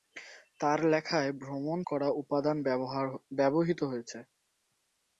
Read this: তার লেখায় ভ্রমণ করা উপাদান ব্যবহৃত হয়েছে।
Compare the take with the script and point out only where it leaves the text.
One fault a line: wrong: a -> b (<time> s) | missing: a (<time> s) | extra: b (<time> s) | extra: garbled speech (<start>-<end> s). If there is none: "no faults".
no faults